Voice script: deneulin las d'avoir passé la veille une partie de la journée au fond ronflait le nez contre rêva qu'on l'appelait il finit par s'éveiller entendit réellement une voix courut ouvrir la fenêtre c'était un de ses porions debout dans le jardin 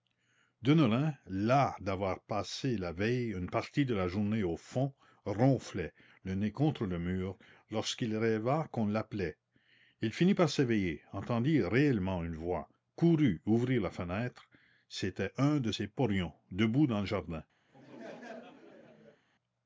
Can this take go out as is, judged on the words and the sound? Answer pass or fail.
fail